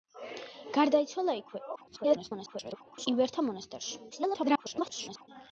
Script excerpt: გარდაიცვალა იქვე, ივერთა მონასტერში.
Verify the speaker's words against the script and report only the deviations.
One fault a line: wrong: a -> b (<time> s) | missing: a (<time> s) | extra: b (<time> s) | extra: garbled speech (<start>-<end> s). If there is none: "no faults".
extra: garbled speech (1.8-3.1 s)
extra: garbled speech (4.1-5.3 s)